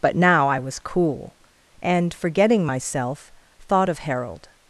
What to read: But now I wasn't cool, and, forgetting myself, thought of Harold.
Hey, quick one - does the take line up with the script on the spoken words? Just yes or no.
no